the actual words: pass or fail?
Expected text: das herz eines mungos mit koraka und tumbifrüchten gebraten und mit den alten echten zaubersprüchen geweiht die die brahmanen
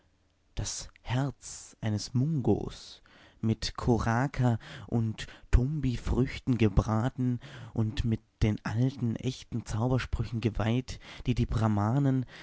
pass